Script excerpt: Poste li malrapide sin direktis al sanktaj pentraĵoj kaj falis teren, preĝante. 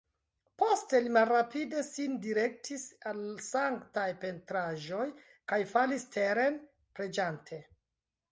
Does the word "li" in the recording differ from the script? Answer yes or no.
no